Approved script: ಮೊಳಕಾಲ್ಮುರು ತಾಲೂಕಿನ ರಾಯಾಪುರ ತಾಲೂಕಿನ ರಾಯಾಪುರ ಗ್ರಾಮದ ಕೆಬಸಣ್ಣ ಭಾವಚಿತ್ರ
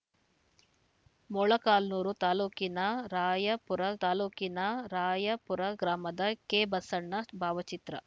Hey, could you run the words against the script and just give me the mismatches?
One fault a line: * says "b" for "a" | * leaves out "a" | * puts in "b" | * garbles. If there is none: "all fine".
all fine